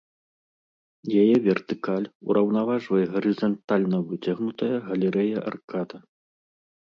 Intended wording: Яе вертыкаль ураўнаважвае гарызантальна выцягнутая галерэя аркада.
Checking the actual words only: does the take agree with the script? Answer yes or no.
yes